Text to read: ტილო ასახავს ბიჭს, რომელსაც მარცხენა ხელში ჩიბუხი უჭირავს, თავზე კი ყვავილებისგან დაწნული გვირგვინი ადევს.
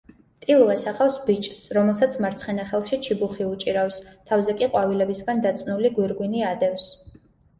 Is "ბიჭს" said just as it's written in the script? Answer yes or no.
yes